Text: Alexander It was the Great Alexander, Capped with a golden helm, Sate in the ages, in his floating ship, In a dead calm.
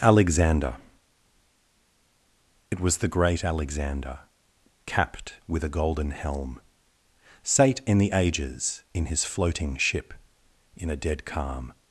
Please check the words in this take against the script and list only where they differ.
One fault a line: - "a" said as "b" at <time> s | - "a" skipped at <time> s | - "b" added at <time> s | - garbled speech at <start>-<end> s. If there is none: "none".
none